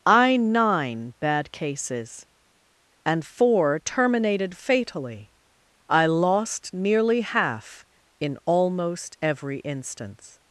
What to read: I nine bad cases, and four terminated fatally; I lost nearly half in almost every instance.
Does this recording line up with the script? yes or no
yes